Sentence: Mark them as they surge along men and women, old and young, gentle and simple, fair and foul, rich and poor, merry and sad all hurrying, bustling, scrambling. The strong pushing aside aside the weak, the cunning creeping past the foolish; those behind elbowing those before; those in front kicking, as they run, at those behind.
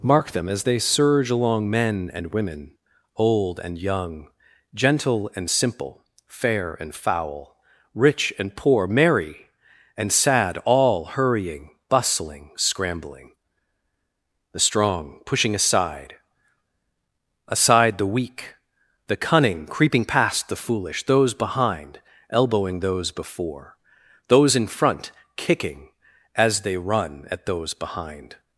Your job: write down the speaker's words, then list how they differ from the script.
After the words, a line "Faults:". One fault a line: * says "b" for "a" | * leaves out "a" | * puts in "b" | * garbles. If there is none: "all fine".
Mark them as they surge along men and women, old and young, gentle and simple, fair and foul, rich and poor, merry and sad all hurrying, bustling, scrambling. The strong pushing aside aside the weak, the cunning creeping past the foolish; those behind elbowing those before; those in front kicking, as they run, at those behind.
Faults:
all fine